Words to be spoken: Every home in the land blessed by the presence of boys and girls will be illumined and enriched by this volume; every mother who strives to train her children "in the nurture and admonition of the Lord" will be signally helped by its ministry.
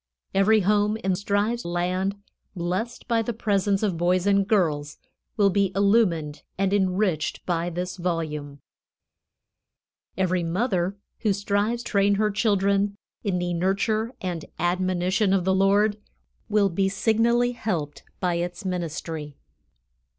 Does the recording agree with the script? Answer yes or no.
no